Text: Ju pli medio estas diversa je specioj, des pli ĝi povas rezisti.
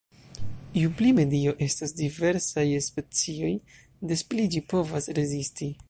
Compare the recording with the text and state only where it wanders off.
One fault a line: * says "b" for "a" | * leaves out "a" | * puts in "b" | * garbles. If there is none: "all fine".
all fine